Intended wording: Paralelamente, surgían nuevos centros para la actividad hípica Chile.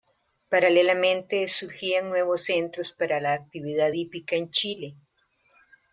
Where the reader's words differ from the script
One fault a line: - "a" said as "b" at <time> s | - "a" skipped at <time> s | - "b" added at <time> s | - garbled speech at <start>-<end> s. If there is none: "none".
- "en" added at 4.4 s